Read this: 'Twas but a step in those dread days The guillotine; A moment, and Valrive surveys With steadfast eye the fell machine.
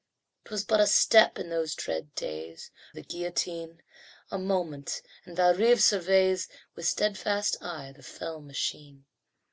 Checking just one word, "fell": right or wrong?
right